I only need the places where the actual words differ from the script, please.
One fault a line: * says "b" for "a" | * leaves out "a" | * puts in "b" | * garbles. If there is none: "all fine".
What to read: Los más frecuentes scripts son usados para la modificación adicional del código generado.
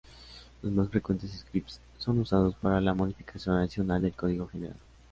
all fine